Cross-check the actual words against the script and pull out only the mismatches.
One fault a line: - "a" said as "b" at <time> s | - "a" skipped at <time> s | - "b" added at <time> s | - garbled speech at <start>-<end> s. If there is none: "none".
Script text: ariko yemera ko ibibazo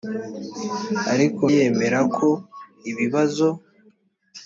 none